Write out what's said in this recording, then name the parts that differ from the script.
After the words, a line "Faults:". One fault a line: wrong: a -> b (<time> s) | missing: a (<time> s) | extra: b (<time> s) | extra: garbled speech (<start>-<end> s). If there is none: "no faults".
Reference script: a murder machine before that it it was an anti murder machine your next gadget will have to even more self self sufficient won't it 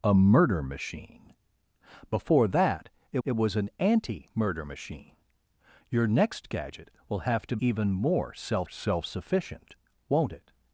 a murder machine before that it it was an anti murder machine your next gadget will have to even more self self sufficient won't it
Faults:
no faults